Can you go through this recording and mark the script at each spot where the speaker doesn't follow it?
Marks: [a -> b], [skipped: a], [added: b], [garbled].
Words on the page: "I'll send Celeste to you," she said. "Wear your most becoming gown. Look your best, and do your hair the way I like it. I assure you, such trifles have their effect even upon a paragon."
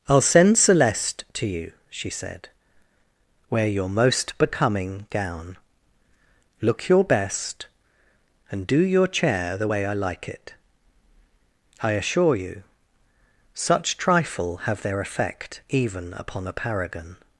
"I'll send Celeste to you," she said. "Wear your most becoming gown. Look your best, and do your [hair -> chair] the way I like it. I assure you, such [trifles -> trifle] have their effect even upon a paragon."